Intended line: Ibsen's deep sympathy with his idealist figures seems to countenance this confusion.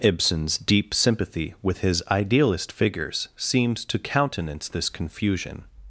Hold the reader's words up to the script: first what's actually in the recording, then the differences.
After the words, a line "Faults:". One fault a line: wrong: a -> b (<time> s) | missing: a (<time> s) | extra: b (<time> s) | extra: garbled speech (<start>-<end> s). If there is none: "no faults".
Ibsen's deep sympathy with his idealist figures seems to countenance this confusion.
Faults:
no faults